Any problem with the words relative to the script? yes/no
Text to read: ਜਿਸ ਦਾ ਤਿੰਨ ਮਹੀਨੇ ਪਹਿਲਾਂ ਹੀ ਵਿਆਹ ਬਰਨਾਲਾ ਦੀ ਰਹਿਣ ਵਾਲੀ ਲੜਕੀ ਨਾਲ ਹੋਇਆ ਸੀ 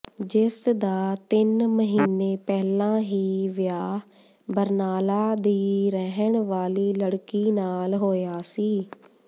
no